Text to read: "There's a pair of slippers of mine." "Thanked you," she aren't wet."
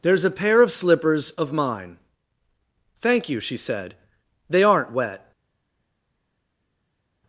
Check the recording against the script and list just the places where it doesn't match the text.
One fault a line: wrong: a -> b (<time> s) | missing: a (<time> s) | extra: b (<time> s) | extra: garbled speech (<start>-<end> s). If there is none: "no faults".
wrong: Thanked -> Thank (3.0 s)
extra: said They (3.6 s)